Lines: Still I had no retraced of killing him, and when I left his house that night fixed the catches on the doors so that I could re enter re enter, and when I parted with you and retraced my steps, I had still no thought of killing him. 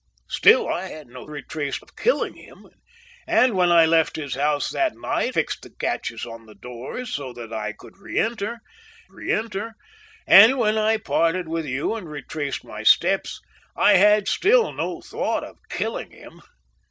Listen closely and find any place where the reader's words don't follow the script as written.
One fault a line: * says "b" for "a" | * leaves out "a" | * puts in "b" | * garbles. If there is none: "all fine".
all fine